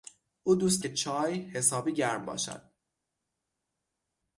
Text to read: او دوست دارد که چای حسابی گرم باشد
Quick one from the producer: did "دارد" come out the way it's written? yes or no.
no